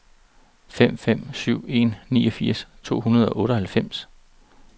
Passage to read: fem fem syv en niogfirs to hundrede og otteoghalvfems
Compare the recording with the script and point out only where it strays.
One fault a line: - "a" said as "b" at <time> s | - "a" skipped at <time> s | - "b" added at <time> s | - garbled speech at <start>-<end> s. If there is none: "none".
none